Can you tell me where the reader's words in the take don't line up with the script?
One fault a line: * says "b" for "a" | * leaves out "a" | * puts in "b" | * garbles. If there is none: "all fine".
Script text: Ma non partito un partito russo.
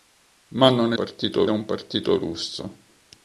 all fine